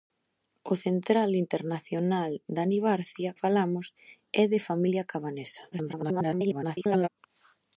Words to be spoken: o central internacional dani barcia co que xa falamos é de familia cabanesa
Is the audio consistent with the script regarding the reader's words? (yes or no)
no